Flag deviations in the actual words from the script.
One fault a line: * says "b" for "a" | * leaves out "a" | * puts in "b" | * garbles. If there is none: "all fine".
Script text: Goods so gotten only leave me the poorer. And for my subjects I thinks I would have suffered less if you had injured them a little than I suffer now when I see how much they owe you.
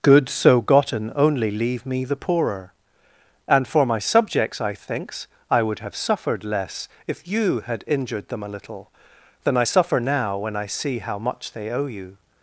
all fine